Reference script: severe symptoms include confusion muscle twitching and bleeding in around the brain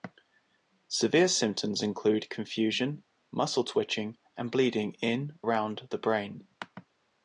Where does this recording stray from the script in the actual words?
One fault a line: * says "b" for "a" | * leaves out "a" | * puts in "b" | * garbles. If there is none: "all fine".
all fine